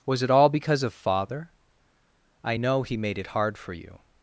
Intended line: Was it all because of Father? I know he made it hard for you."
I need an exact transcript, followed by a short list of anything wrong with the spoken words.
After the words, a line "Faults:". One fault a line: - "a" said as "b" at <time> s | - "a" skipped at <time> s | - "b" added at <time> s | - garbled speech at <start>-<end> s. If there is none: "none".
Was it all because of Father? I know he made it hard for you."
Faults:
none